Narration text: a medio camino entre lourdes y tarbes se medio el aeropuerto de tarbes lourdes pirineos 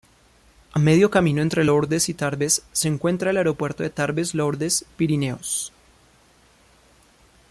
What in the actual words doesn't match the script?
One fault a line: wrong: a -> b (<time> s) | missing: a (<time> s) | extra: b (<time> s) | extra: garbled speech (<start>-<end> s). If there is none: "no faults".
wrong: medio -> encuentra (2.9 s)